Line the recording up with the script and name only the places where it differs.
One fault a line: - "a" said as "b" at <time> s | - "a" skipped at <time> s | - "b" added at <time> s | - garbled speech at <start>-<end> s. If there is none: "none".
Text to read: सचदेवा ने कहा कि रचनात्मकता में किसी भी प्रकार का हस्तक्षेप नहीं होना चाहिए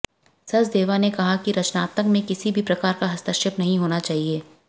none